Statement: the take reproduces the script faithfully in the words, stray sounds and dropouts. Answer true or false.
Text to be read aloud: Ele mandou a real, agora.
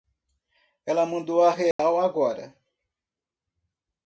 false